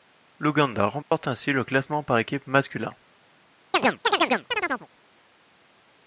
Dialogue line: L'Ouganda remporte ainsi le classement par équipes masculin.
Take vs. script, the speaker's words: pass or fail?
pass